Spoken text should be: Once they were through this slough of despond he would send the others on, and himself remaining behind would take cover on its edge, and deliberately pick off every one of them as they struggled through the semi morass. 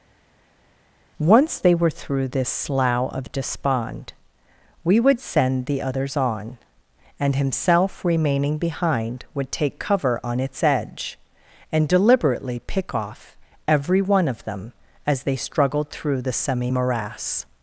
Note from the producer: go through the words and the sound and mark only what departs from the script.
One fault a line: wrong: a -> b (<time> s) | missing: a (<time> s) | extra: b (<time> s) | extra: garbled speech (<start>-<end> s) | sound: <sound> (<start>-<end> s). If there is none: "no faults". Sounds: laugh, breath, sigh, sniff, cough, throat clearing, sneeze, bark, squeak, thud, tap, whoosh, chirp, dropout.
wrong: he -> we (4.8 s)